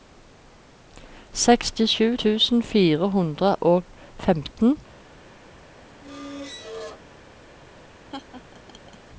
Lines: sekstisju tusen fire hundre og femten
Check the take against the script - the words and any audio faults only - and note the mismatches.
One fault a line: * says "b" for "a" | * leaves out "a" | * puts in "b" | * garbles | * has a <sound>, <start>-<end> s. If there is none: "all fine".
* has a squeak, 6.0-7.0 s
* has a laugh, 8.1-9.0 s